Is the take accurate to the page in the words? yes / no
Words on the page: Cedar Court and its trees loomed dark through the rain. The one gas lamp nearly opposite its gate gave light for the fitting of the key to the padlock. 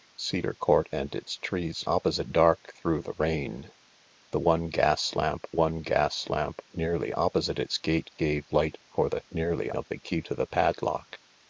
no